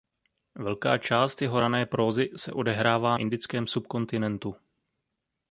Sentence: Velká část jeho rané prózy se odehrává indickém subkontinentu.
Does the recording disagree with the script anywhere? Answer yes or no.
no